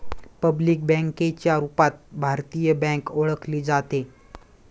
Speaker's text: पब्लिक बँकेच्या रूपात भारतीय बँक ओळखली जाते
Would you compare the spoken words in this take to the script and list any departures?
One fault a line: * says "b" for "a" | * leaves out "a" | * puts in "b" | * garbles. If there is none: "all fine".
all fine